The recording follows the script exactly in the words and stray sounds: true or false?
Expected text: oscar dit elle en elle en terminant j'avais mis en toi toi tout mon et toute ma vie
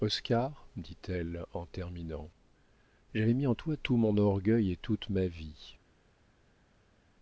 false